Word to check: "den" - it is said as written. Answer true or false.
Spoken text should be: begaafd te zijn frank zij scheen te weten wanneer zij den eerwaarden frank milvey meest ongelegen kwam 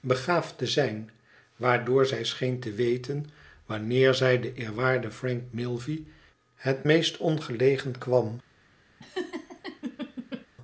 true